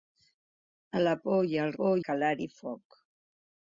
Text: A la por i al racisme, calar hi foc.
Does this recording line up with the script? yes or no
no